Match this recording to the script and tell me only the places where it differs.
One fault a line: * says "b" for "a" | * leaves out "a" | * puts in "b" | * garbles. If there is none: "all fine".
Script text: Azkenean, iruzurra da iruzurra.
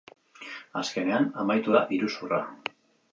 * says "amaitu" for "iruzurra"